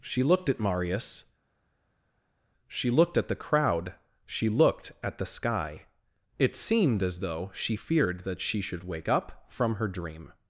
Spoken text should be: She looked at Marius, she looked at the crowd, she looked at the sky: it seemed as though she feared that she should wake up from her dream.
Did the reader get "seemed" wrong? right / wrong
right